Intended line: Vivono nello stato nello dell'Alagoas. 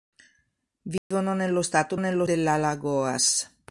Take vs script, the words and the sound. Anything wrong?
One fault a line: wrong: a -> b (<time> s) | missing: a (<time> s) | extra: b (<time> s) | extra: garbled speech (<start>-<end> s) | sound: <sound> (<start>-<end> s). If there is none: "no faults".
sound: dropout (1.0-1.1 s)